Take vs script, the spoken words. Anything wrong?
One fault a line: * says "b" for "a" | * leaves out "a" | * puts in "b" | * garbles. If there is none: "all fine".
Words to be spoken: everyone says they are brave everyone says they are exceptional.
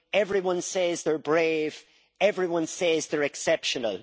all fine